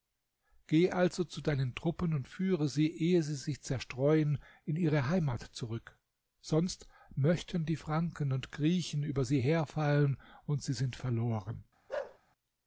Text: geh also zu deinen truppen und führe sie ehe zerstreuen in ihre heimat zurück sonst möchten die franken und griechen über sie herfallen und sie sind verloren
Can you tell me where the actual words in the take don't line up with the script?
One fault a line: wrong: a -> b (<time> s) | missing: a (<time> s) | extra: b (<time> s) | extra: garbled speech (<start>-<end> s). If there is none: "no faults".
extra: sie sich (3.2 s)